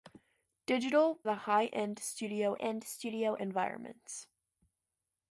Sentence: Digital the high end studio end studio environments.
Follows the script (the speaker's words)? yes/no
yes